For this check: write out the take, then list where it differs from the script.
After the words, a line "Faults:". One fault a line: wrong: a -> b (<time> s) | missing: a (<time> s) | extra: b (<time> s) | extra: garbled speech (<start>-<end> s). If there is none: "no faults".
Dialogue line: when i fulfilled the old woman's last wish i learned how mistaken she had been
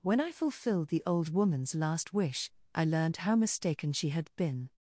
when i fulfilled the old woman's last wish i learned how mistaken she had been
Faults:
no faults